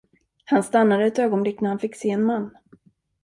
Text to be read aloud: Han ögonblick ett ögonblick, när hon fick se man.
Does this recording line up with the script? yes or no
no